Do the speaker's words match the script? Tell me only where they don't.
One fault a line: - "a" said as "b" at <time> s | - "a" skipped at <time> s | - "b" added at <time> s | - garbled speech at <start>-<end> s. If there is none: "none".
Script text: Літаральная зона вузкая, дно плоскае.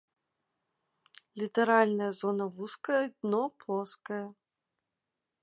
none